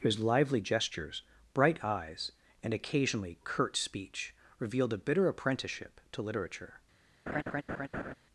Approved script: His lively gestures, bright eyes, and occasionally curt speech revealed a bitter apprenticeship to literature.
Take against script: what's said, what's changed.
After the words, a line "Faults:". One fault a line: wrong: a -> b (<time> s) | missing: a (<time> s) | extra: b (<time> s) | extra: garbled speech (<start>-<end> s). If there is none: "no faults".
His lively gestures, bright eyes, and occasionally curt speech revealed a bitter apprenticeship to literature.
Faults:
no faults